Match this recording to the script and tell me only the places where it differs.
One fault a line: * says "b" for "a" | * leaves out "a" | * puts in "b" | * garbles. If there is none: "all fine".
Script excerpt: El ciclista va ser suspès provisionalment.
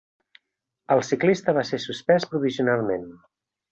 all fine